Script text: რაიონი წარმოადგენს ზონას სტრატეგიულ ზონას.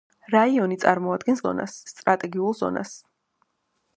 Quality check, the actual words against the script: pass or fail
pass